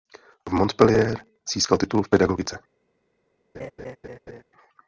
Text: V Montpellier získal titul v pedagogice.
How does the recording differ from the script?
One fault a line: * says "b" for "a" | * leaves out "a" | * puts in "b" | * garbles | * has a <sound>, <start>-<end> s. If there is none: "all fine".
* has a laugh, 3.5-4.4 s